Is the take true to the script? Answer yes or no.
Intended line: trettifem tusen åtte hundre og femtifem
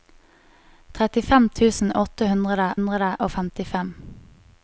no